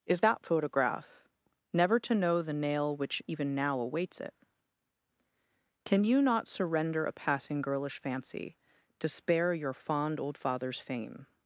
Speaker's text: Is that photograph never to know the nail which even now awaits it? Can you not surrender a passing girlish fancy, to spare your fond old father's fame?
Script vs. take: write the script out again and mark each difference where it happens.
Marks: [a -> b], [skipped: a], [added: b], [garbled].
Is that photograph never to know the nail which even now awaits it? Can you not surrender a passing girlish fancy, to spare your fond old father's fame?